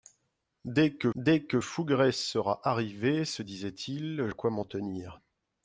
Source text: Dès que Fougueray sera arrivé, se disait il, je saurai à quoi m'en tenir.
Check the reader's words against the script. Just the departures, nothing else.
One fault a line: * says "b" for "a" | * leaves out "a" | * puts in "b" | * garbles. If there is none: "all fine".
* puts in "dès que"
* leaves out "je saurai"